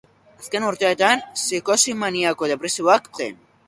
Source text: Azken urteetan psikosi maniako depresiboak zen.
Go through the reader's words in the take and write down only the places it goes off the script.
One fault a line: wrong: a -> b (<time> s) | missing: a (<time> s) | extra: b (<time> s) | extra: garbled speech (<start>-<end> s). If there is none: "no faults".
no faults